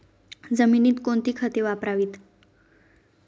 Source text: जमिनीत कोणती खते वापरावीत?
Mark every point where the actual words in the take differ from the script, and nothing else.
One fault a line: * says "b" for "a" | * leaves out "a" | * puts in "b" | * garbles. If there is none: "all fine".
all fine